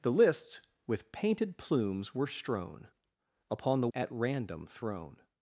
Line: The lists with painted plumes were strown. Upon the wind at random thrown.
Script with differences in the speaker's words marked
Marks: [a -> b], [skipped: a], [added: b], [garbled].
The lists with painted plumes were strown. Upon the [skipped: wind] at random thrown.